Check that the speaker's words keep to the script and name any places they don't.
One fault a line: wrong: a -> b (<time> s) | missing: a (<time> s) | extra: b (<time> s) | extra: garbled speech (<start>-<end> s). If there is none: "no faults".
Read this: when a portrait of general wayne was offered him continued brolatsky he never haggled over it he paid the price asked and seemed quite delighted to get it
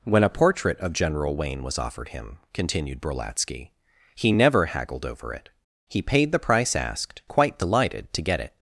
missing: and seemed (7.2 s)